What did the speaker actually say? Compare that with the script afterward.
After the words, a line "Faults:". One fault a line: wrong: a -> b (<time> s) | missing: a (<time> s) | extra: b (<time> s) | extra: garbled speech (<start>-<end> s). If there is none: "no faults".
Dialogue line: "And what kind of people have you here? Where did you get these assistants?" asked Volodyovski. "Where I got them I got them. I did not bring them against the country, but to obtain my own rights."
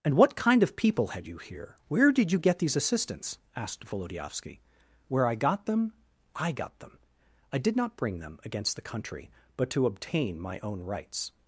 "And what kind of people had you here? Where did you get these assistants?" asked Volodyovski. "Where I got them I got them. I did not bring them against the country, but to obtain my own rights."
Faults:
wrong: have -> had (1.1 s)